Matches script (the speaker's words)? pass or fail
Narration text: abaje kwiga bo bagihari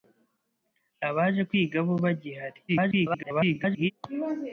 fail